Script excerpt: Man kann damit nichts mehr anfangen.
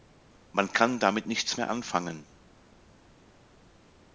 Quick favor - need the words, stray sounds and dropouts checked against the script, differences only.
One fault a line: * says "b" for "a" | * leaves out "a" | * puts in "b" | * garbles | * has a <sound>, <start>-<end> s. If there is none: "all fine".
all fine